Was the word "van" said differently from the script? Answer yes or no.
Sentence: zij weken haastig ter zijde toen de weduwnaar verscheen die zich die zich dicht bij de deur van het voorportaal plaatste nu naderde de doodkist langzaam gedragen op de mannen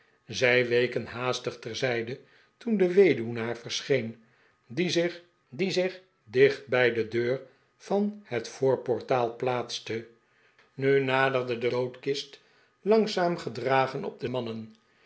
no